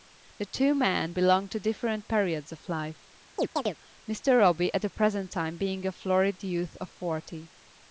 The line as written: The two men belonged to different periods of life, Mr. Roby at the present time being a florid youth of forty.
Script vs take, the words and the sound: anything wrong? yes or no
yes